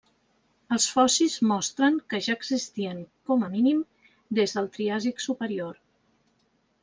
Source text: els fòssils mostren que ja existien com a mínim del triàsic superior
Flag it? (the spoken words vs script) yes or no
yes